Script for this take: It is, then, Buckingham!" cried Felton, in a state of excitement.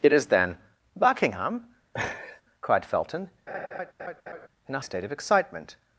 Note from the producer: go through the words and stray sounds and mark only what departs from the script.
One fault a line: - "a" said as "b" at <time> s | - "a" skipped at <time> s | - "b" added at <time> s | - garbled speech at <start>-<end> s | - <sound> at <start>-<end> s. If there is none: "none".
- laugh at 1.9-2.4 s
- laugh at 3.5-4.5 s